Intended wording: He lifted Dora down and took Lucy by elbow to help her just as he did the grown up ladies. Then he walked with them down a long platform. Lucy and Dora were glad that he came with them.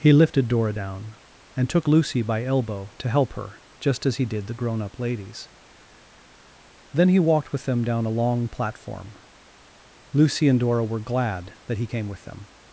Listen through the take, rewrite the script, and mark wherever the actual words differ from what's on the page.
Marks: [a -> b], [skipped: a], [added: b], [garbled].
He lifted Dora down and took Lucy by elbow to help her just as he did the grown up ladies. Then he walked with them down a long platform. Lucy and Dora were glad that he came with them.